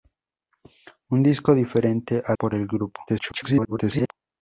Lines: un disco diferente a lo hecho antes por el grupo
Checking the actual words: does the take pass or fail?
fail